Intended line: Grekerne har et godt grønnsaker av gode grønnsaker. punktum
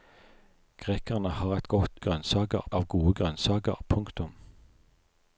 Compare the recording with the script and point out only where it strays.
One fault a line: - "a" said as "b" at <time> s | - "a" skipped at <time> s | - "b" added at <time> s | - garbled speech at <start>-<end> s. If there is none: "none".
none